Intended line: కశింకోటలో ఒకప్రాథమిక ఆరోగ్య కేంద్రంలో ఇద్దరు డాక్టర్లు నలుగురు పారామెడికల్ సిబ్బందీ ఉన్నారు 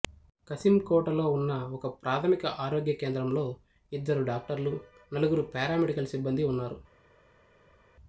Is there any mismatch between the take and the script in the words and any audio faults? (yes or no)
yes